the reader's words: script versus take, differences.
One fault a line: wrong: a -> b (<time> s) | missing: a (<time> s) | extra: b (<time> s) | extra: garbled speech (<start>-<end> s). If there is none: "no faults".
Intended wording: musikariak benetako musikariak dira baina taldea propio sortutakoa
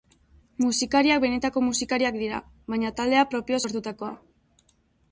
no faults